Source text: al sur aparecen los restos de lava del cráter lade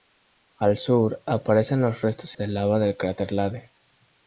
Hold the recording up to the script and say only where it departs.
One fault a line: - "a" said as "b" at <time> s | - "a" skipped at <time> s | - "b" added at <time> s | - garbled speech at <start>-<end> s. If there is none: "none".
none